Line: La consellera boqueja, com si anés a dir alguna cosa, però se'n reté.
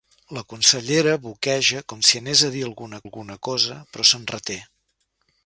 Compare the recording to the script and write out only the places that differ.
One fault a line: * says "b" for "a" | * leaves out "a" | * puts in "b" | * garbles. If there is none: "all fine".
* puts in "alguna"